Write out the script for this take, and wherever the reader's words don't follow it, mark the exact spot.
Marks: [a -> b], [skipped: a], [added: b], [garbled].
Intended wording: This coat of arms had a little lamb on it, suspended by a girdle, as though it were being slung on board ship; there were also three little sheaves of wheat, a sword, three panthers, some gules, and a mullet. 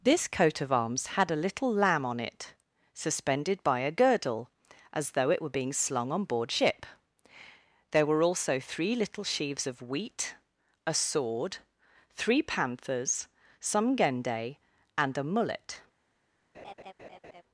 This coat of arms had a little lamb on it, suspended by a girdle, as though it were being slung on board ship; there were also three little sheaves of wheat, a sword, three panthers, some [gules, -> gende] and a mullet.